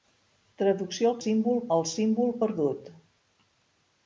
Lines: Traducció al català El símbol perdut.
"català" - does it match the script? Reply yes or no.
no